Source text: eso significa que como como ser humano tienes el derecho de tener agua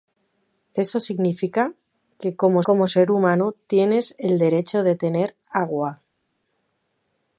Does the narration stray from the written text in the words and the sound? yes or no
no